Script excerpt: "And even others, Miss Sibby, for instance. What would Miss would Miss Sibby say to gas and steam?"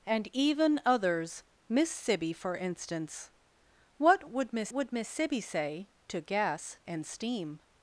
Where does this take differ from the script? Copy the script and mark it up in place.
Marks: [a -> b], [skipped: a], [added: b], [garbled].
"And even others, Miss Sibby, for instance. What would Miss would Miss Sibby say to gas and steam?"